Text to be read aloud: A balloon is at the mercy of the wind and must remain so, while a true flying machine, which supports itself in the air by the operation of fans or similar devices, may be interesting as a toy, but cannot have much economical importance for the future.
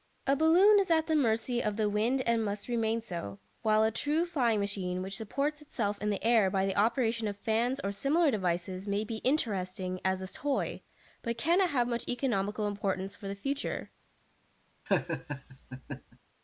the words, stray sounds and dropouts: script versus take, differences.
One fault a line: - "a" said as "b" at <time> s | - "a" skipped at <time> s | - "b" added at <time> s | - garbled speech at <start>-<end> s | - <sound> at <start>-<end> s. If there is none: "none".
- laugh at 14.9-16.2 s